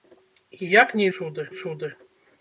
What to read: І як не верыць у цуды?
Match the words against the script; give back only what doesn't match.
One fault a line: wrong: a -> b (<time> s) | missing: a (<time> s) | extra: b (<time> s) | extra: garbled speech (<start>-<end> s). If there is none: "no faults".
wrong: верыць -> цуды (1.2 s)